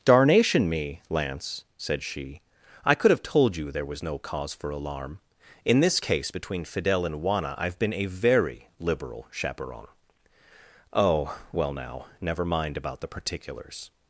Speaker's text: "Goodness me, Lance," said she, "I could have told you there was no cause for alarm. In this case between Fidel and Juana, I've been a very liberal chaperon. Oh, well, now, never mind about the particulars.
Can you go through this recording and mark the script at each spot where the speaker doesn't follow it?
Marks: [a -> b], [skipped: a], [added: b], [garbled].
["Goodness -> Darnation] me, Lance," said she, "I could have told you there was no cause for alarm. In this case between Fidel and Juana, I've been a very liberal chaperon. Oh, well, now, never mind about the particulars.